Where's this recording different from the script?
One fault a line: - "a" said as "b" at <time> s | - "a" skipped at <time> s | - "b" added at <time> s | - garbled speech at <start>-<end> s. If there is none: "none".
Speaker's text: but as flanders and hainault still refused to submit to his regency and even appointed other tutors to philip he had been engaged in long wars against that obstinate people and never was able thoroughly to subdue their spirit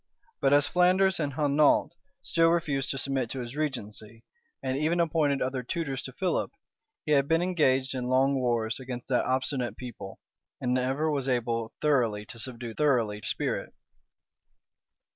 - "their" said as "thoroughly" at 12.8 s